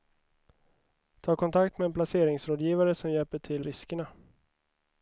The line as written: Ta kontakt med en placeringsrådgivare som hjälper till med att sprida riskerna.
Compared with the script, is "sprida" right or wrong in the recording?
wrong